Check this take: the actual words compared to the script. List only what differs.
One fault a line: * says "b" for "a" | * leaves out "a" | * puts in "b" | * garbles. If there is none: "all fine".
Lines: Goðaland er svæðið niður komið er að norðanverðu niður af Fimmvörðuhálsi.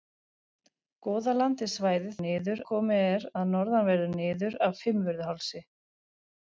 all fine